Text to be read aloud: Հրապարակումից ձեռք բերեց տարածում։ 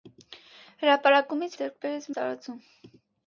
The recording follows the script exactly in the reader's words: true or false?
true